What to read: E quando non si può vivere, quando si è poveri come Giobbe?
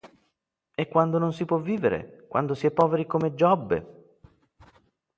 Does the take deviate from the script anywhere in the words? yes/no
no